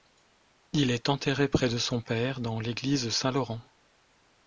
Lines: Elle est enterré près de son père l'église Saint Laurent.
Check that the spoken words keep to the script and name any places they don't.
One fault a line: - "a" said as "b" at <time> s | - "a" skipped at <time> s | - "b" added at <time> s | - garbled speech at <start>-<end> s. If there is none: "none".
- "Elle" said as "Il" at 0.7 s
- "dans" added at 2.4 s